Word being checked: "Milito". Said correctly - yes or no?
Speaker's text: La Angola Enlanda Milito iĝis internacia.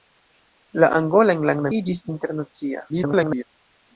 no